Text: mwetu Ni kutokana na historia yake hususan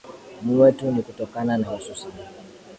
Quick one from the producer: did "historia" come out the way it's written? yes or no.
no